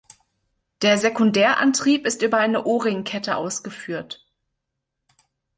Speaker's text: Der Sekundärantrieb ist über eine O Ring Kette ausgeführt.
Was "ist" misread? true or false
false